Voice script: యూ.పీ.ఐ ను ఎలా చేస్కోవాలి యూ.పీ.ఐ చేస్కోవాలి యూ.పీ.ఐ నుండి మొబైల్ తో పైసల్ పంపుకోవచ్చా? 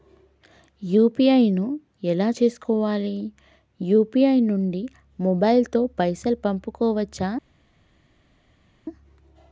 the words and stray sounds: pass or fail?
fail